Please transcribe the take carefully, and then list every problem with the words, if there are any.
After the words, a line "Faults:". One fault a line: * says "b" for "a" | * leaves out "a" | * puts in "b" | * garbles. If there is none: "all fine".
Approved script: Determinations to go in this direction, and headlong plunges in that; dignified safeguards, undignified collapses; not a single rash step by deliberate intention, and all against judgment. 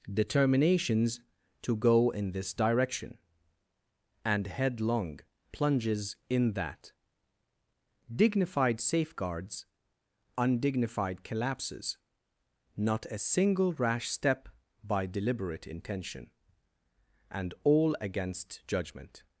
Determinations to go in this direction, and headlong plunges in that; dignified safeguards, undignified collapses; not a single rash step by deliberate intention, and all against judgment.
Faults:
all fine